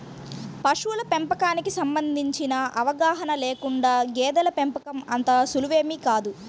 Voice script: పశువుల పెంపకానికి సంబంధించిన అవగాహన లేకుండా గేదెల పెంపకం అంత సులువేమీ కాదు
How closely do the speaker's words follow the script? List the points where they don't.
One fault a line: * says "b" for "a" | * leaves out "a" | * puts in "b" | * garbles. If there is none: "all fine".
all fine